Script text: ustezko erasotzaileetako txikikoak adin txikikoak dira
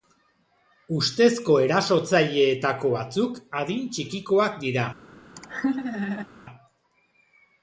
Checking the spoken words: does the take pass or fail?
fail